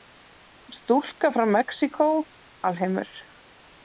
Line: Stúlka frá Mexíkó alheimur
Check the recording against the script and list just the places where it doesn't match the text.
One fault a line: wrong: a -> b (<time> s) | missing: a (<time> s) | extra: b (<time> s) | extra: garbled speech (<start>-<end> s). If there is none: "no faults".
no faults